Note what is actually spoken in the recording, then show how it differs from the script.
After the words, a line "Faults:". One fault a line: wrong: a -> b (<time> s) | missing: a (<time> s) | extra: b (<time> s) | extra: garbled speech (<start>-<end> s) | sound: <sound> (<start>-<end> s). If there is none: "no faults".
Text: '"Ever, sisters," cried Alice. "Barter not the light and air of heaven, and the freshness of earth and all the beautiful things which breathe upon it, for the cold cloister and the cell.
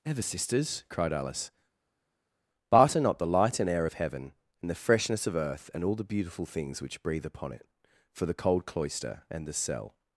'"Ever, sisters," cried Alice. "Barter not the light and air of heaven, and the freshness of earth and all the beautiful things which breathe upon it, for the cold cloister and the cell.
Faults:
no faults